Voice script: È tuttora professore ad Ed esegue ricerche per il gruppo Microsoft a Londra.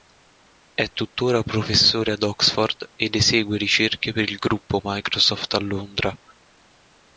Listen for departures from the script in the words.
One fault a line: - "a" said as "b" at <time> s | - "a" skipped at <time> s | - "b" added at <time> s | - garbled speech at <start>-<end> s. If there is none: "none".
- "Oxford" added at 2.2 s